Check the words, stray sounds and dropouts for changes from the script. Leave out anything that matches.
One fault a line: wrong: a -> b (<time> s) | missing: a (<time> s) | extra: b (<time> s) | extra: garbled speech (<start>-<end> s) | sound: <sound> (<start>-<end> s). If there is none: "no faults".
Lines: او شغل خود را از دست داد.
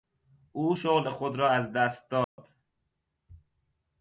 sound: dropout (2.2-2.4 s)